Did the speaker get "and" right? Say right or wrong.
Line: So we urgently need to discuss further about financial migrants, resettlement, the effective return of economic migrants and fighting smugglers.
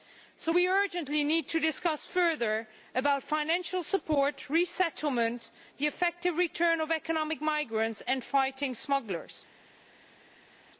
right